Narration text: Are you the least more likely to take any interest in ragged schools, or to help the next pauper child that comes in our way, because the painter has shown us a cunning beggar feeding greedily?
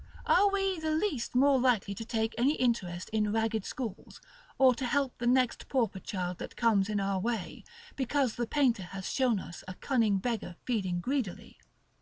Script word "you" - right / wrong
wrong